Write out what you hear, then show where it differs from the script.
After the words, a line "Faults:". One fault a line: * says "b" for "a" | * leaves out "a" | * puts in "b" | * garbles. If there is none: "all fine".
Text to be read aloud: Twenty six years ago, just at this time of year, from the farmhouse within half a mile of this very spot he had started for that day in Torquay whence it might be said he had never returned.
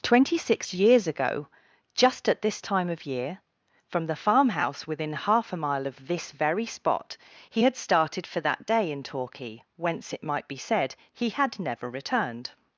Twenty six years ago, just at this time of year, from the farmhouse within half a mile of this very spot he had started for that day in Torquay whence it might be said he had never returned.
Faults:
all fine